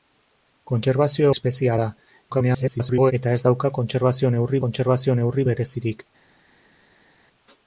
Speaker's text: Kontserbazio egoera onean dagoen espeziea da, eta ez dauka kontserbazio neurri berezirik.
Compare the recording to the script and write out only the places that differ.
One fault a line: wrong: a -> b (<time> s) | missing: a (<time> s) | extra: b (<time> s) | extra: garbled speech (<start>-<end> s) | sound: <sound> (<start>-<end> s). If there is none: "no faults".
missing: egoera onean dagoen (1.3 s)
extra: garbled speech (2.3-3.1 s)
extra: kontserbazio neurri (4.6 s)